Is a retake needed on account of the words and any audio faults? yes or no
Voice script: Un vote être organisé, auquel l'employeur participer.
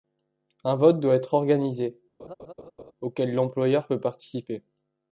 yes